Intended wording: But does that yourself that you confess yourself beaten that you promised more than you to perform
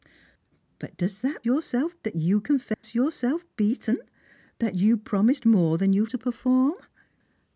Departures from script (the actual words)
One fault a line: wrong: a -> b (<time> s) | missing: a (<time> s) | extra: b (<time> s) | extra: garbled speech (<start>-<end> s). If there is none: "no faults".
no faults